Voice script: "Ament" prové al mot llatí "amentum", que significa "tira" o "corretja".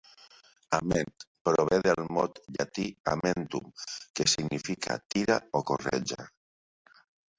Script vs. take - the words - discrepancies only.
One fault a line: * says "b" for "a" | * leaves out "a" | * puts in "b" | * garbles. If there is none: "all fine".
* says "del" for "al"